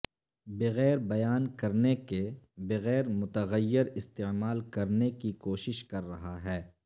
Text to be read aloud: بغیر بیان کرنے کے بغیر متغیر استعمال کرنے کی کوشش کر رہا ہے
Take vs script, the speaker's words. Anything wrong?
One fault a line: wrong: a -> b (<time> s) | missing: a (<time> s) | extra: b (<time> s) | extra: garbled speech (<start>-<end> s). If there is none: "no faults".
no faults